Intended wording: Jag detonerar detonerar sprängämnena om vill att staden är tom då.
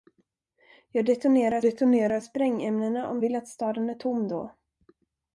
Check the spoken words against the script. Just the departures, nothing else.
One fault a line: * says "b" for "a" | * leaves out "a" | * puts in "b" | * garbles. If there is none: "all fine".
all fine